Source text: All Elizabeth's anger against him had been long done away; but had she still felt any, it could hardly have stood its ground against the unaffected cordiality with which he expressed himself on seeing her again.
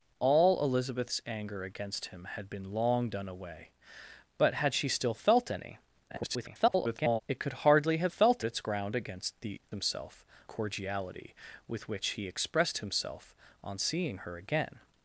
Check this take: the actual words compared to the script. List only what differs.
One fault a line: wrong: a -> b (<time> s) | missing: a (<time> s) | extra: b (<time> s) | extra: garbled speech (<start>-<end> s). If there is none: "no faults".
extra: garbled speech (6.1-7.2 s)
wrong: stood -> felt (8.1 s)
wrong: unaffected -> himself (9.7 s)